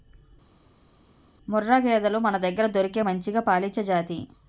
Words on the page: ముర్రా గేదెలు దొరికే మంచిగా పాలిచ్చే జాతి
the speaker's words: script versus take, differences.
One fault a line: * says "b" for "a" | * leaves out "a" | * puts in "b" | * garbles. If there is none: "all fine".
* puts in "మనదగ్గర"